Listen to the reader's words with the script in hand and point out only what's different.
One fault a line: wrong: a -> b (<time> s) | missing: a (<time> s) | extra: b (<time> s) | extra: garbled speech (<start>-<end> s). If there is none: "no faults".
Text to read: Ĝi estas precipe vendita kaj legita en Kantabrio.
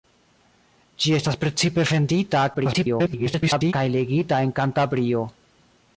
extra: garbled speech (2.5-3.7 s)